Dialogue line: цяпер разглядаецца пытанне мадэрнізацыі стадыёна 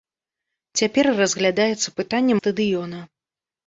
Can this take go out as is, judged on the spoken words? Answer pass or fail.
fail